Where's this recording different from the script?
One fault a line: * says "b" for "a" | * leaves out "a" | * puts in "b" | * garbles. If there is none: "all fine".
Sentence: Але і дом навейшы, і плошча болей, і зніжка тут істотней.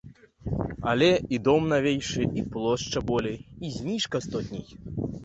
* leaves out "тут"